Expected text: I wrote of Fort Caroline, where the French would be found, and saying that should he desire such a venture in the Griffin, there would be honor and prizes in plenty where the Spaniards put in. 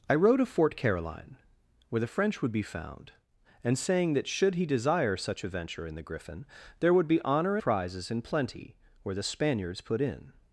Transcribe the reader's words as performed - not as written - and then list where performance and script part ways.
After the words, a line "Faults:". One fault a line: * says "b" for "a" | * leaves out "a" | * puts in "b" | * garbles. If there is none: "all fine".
I wrote of Fort Caroline, where the French would be found, and saying that should he desire such a venture in the Griffin, there would be honor prizes in plenty where the Spaniards put in.
Faults:
* leaves out "and"